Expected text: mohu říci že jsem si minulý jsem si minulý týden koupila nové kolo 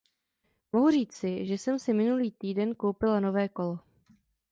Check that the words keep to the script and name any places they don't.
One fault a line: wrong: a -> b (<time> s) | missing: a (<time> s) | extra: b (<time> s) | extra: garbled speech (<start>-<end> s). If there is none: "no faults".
missing: jsem si minulý (2.3 s)